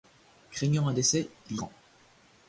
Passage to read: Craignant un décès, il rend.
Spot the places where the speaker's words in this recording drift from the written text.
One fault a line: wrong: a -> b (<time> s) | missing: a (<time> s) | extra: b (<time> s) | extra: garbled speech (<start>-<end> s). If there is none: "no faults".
no faults